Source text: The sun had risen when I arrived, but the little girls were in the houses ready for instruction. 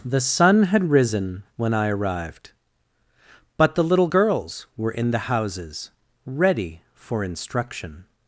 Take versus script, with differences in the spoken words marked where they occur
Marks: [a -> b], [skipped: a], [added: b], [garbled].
The sun had risen when I arrived, but the little girls were in the houses ready for instruction.